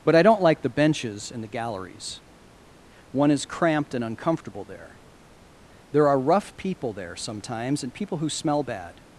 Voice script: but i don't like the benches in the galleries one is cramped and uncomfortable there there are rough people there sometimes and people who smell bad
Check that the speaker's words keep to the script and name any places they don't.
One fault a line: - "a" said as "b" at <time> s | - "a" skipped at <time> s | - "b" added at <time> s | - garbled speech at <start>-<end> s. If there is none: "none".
none